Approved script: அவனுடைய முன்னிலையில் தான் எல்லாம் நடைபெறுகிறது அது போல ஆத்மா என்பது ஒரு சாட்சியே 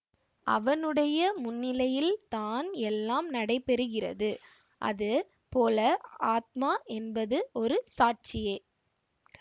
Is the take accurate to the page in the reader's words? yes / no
yes